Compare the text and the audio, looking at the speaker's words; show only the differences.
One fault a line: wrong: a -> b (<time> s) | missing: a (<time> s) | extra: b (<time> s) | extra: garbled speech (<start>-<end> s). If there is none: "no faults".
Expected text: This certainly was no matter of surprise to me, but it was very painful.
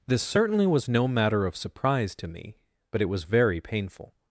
no faults